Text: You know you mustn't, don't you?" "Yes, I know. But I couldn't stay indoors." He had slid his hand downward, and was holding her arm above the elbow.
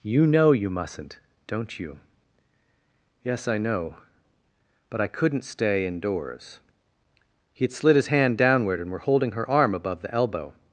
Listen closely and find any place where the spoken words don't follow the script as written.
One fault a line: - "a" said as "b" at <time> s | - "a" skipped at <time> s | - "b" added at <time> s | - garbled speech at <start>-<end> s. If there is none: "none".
- "was" said as "were" at 8.9 s